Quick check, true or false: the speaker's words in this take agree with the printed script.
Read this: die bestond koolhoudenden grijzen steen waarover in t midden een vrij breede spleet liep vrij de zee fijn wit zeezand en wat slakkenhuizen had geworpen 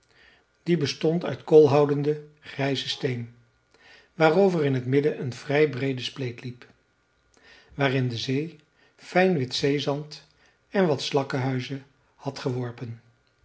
false